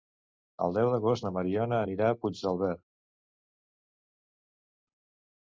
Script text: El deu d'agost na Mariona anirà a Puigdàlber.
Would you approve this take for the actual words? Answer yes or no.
yes